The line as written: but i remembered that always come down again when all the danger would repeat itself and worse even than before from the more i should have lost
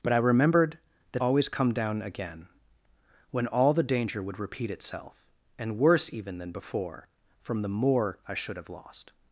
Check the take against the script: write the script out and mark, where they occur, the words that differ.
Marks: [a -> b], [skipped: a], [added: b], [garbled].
but i remembered that always come down again when all the danger would repeat itself and worse even than before from the more i should have lost